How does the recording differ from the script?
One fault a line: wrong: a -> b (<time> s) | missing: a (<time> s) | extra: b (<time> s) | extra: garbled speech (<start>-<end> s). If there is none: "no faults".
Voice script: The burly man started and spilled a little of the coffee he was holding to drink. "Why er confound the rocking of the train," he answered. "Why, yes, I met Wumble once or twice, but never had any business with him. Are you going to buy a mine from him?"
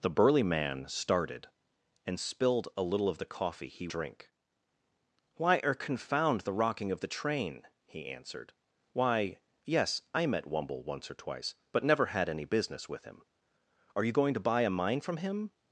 missing: was holding to (3.9 s)